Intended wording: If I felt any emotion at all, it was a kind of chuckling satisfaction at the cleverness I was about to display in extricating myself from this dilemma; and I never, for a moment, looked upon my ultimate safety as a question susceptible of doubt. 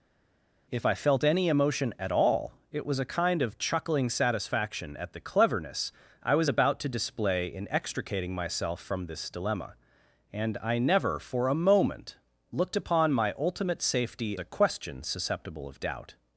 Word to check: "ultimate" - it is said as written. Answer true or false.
true